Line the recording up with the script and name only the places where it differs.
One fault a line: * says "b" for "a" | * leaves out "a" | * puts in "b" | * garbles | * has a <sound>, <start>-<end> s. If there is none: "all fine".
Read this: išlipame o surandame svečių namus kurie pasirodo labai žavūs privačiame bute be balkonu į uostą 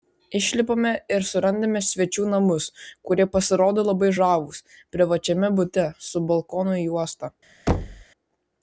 * says "ir" for "o"
* says "su" for "be"
* has a thud, 7.7-8.0 s